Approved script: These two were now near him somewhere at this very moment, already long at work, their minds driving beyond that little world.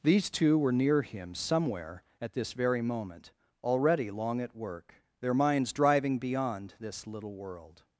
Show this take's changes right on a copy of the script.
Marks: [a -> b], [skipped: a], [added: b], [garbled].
These two were [skipped: now] near him somewhere at this very moment, already long at work, their minds driving beyond [that -> this] little world.